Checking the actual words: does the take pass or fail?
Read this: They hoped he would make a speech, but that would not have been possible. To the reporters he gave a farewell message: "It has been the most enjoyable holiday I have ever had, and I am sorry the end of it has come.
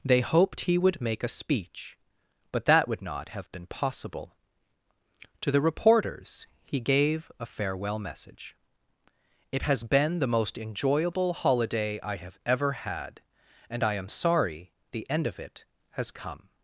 pass